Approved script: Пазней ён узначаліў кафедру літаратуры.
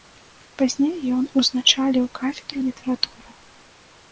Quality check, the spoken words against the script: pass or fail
pass